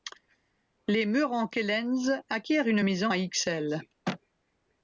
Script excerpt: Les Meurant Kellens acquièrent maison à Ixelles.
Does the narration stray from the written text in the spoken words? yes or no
yes